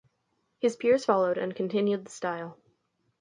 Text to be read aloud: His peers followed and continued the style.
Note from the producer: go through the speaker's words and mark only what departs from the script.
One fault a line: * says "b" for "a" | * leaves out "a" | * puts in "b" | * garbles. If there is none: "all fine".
all fine